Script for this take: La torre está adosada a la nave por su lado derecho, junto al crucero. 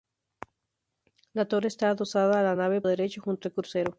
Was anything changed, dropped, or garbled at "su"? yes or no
yes